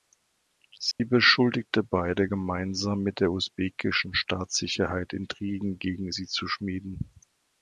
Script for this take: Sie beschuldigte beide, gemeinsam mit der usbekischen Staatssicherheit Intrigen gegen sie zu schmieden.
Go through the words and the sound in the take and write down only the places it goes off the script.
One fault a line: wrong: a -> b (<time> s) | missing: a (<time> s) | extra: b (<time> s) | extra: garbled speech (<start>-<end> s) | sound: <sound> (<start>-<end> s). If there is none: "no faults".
sound: dropout (0.9-1.0 s)